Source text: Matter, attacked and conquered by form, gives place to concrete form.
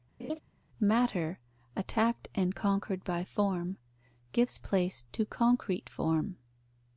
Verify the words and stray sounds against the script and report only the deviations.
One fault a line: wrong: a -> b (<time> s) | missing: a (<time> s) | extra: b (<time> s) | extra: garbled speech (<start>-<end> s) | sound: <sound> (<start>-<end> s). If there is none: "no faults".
sound: laugh (0.2-0.4 s)